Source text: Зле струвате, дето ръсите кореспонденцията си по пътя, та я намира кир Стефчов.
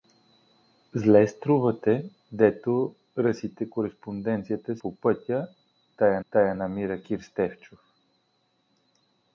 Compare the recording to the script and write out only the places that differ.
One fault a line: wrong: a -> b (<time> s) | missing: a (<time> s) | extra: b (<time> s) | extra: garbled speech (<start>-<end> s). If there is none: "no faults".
missing: си (4.8 s)
extra: та я (6.3 s)